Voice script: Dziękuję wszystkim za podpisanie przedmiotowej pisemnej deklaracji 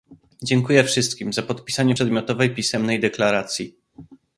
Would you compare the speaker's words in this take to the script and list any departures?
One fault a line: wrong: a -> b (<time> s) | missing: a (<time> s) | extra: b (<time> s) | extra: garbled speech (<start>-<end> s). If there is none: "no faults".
no faults